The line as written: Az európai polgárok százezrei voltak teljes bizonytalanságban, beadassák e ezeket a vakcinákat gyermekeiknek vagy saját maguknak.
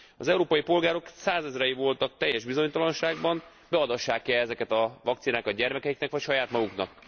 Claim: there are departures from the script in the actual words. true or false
false